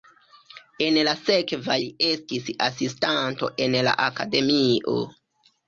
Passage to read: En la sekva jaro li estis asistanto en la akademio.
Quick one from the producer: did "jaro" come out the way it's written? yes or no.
no